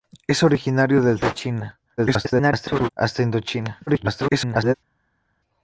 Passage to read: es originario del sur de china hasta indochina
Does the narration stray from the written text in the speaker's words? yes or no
yes